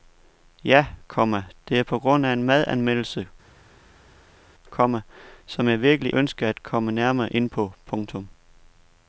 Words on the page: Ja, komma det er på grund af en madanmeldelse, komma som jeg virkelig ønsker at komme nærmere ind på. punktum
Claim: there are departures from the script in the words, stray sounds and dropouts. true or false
false